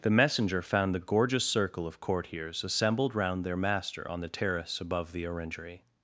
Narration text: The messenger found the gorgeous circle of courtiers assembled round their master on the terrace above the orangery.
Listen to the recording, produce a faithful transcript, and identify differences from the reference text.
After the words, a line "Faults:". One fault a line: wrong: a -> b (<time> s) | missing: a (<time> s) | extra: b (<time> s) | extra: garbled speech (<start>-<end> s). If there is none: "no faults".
The messenger found the gorgeous circle of courtiers assembled round their master on the terrace above the orangery.
Faults:
no faults